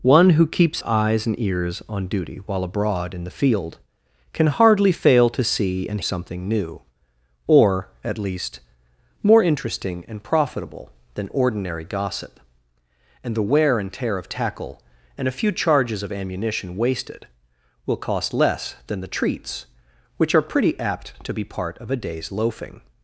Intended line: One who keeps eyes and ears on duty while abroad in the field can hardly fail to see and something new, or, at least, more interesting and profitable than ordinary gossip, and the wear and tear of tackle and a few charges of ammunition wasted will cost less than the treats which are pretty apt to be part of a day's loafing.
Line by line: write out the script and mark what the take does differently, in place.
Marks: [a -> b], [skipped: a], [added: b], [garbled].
One who keeps eyes and ears on duty while abroad in the field can hardly fail to see and something new, or, at least, more interesting and profitable than ordinary gossip, and the wear and tear of tackle and a few charges of ammunition wasted will cost less than the treats which are pretty apt to be part of a day's loafing.